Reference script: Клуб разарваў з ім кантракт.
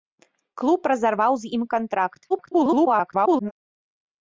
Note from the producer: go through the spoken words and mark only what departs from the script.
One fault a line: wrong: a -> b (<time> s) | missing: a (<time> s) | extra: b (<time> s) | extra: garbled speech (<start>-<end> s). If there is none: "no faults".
extra: garbled speech (2.3-3.5 s)